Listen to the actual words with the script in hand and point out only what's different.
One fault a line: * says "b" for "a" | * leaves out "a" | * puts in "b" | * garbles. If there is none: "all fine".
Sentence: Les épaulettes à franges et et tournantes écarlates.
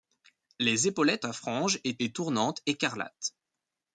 all fine